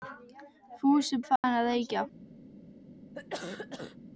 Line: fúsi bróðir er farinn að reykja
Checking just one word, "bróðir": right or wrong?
wrong